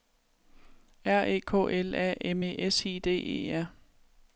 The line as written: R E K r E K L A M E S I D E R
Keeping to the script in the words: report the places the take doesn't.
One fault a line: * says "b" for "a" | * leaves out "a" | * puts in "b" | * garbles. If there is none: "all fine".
* leaves out "r E K"